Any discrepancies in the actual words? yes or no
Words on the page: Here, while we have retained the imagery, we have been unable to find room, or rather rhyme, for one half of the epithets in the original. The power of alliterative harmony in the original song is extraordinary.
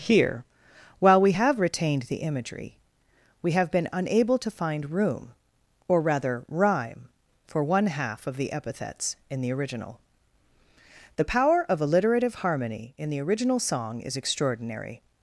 no